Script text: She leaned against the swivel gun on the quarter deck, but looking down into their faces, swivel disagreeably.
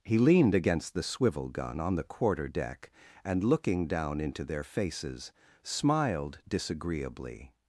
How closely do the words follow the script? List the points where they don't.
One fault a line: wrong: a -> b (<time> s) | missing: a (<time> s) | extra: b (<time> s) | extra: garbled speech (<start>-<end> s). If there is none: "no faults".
wrong: She -> He (0.0 s)
wrong: but -> and (3.2 s)
wrong: swivel -> smiled (5.6 s)